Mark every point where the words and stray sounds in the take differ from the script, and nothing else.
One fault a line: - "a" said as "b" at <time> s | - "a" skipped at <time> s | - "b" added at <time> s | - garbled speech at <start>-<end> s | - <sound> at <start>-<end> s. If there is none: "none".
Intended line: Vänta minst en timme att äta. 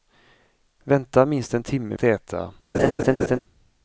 - laugh at 2.7-3.4 s